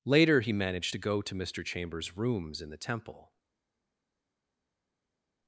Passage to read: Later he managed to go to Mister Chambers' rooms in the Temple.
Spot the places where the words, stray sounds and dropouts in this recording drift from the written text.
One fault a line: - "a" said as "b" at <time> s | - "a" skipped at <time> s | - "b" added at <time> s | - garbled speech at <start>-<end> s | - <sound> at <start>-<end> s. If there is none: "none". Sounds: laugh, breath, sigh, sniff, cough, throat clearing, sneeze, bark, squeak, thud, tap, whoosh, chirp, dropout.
none